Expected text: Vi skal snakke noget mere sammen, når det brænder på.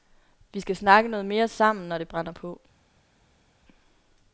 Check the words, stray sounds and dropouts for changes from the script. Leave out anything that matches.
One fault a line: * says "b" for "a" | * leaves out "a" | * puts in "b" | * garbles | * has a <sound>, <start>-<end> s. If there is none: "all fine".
all fine